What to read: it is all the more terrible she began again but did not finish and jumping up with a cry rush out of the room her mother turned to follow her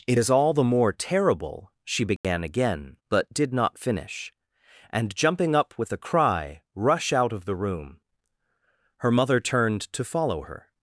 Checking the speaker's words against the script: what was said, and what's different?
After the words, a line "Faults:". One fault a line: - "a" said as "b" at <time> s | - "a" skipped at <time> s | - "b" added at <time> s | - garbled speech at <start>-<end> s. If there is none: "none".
it is all the more terrible she began again but did not finish and jumping up with a cry rush out of the room her mother turned to follow her
Faults:
none